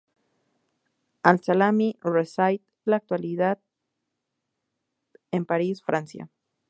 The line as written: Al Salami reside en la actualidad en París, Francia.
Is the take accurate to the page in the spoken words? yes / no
no